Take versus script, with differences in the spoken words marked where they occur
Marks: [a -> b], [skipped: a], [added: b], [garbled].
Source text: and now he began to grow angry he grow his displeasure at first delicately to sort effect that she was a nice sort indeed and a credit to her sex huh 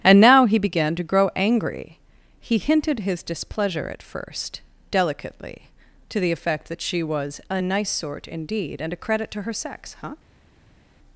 and now he began to grow angry he [grow -> hinted] his displeasure at first delicately to [sort -> the] effect that she was a nice sort indeed and a credit to her sex huh